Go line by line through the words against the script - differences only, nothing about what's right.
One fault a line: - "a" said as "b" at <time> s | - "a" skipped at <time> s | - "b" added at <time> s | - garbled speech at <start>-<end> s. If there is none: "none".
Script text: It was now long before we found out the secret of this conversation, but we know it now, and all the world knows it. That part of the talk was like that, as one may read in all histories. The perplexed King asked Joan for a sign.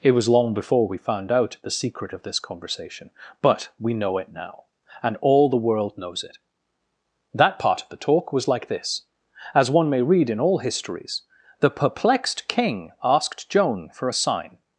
- "now" skipped at 0.3 s
- "that" said as "this" at 8.7 s